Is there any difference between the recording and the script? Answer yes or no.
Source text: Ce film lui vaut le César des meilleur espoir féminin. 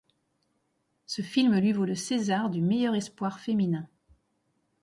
yes